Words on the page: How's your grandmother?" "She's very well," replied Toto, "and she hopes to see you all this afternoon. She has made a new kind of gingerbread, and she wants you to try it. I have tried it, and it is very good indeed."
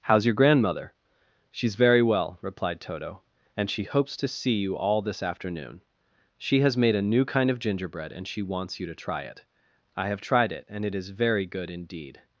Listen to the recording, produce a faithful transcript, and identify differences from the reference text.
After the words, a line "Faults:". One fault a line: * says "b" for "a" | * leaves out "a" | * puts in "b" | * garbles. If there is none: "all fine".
How's your grandmother?" "She's very well," replied Toto, "and she hopes to see you all this afternoon. She has made a new kind of gingerbread, and she wants you to try it. I have tried it, and it is very good indeed."
Faults:
all fine